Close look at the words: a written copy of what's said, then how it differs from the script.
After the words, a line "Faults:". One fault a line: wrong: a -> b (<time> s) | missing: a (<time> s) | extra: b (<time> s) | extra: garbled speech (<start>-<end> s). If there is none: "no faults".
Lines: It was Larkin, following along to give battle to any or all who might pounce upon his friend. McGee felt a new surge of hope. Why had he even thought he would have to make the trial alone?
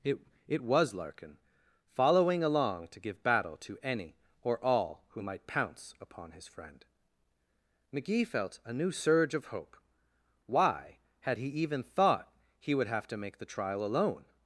It it was Larkin, following along to give battle to any or all who might pounce upon his friend. McGee felt a new surge of hope. Why had he even thought he would have to make the trial alone?
Faults:
extra: it (0.5 s)